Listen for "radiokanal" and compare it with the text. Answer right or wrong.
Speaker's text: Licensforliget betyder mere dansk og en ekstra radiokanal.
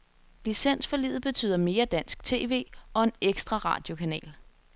right